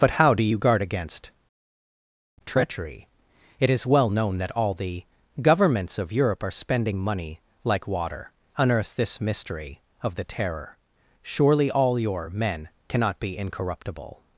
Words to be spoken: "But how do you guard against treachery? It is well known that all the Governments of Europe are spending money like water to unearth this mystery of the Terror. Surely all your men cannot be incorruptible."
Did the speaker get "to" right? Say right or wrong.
wrong